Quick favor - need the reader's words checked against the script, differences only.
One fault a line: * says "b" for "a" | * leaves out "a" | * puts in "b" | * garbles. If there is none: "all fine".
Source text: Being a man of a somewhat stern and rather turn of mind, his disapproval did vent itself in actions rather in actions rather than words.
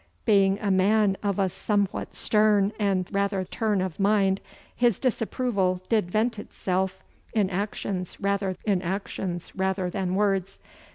all fine